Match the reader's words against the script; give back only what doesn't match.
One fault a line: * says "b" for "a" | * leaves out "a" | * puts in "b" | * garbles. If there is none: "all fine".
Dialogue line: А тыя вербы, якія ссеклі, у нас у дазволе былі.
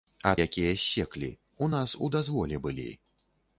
* leaves out "тыя вербы"